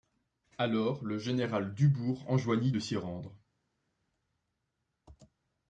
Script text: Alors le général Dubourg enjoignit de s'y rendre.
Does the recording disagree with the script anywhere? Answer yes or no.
no